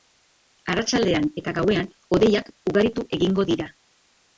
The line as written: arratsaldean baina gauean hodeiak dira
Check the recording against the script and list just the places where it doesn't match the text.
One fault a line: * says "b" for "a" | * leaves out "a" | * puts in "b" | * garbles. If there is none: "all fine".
* says "eta" for "baina"
* puts in "ugaritu egingo"